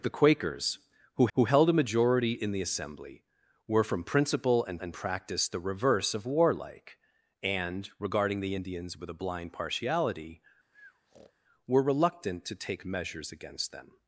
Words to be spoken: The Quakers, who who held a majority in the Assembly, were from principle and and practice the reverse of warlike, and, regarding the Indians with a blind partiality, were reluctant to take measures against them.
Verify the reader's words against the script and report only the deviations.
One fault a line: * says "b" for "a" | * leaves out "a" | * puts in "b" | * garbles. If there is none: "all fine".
all fine